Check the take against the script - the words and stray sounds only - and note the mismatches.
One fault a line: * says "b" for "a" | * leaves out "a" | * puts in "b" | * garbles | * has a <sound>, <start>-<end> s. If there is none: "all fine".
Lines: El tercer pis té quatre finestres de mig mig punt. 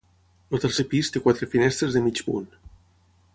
* leaves out "mig"